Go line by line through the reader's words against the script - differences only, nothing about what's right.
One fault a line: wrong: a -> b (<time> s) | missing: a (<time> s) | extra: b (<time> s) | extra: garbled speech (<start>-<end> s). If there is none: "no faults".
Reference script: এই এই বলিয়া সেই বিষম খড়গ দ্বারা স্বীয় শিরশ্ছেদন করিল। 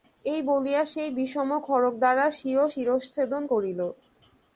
missing: এই (0.4 s)